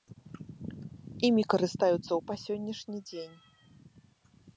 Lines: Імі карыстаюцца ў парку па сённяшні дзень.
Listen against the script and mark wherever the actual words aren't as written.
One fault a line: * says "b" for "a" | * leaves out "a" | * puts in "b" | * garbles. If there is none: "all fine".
* leaves out "парку"